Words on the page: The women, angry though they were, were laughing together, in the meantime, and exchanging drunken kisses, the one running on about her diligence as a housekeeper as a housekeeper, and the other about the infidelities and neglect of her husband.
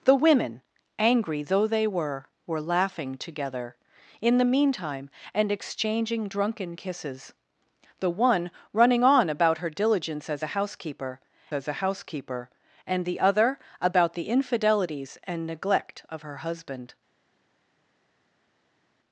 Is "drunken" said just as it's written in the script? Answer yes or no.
yes